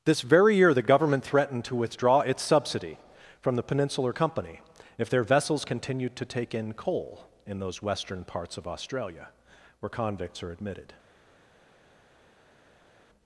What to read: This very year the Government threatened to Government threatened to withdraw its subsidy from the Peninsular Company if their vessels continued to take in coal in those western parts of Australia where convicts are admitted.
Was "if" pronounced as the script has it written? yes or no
yes